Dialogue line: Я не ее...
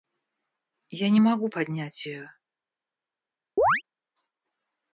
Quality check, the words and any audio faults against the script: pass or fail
fail